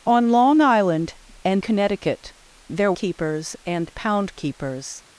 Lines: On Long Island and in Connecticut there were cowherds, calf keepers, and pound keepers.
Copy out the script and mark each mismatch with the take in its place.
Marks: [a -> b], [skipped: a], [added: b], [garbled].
On Long Island and [skipped: in] Connecticut there [skipped: were cowherds, calf] keepers, and pound keepers.